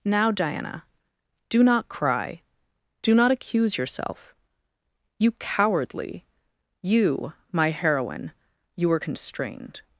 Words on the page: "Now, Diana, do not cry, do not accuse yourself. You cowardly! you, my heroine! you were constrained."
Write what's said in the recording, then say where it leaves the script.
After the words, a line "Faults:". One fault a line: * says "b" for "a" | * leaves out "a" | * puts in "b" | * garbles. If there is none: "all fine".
"Now, Diana, do not cry, do not accuse yourself. You cowardly! you, my heroine! you were constrained."
Faults:
all fine